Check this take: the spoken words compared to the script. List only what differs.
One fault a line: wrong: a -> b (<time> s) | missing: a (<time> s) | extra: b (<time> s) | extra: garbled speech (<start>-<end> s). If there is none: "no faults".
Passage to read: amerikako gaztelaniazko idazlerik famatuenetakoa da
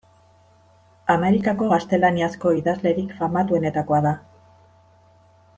no faults